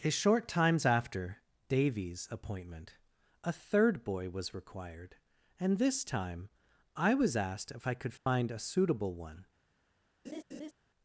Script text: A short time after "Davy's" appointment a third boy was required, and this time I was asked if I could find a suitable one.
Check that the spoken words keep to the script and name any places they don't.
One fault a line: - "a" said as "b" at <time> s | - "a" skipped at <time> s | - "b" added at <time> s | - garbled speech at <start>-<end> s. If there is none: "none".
- "time" said as "times" at 0.5 s